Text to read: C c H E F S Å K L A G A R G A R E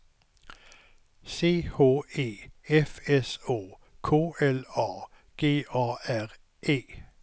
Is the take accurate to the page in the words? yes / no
no